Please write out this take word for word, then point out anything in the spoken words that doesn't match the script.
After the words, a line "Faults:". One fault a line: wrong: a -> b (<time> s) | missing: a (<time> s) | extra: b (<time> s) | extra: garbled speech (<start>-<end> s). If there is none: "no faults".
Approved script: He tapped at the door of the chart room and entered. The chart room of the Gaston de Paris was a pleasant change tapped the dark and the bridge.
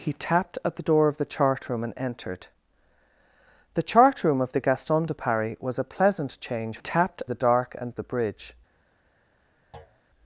He tapped at the door of the chart room and entered. The chart room of the Gaston de Paris was a pleasant change tapped the dark and the bridge.
Faults:
no faults